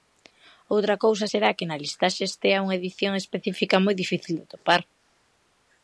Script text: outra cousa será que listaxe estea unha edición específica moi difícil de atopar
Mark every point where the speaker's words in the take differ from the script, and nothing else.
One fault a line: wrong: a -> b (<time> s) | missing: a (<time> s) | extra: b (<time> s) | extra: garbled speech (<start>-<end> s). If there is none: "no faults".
extra: na (1.7 s)